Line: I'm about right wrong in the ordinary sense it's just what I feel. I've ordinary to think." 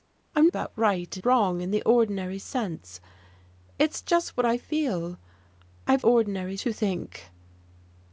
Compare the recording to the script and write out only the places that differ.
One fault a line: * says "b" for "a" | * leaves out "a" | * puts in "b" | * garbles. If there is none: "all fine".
all fine